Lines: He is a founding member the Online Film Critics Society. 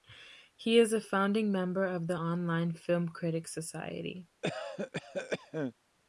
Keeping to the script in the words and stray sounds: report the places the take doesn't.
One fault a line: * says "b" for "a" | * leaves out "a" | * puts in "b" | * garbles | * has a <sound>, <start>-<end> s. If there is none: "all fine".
* puts in "of"
* has a cough, 4.4-5.7 s